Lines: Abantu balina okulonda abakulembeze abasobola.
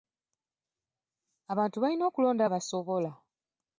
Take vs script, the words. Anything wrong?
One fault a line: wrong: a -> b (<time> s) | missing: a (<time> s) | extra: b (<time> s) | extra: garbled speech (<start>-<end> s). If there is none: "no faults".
missing: abakulembeze (2.4 s)